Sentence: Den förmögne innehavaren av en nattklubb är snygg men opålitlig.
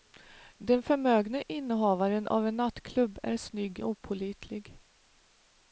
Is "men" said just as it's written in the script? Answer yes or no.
no